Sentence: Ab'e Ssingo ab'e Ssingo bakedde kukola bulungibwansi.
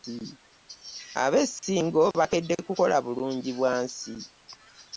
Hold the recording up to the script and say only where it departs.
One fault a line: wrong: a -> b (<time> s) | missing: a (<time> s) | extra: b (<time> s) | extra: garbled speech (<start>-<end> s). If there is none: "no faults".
missing: ab'e Ssingo (2.0 s)